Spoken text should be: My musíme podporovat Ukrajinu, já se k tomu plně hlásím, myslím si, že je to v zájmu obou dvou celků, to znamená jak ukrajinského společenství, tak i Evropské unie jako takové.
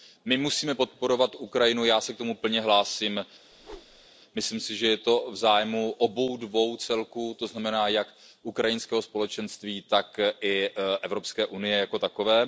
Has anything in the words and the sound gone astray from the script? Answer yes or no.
yes